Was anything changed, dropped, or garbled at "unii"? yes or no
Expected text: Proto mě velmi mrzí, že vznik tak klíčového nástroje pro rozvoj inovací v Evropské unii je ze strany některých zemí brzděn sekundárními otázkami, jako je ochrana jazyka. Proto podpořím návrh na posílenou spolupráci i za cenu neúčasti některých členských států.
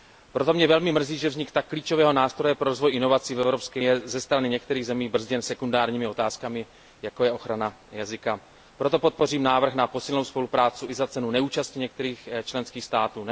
yes